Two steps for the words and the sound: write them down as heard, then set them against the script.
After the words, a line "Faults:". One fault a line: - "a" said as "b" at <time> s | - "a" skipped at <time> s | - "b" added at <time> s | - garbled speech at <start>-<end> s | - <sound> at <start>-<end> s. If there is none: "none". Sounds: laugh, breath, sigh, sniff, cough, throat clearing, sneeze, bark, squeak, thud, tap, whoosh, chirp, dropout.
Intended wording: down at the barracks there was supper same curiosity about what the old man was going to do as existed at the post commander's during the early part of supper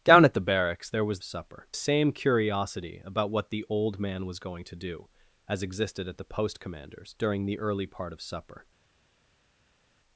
down at the barracks there was supper same curiosity about what the old man was going to do as existed at the post commander's during the early part of supper
Faults:
none